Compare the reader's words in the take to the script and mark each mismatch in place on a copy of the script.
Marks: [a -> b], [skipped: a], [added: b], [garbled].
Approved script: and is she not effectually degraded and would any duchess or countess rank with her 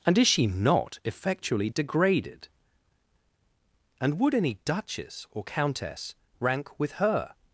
and is she not effectually degraded and would any duchess or countess rank with her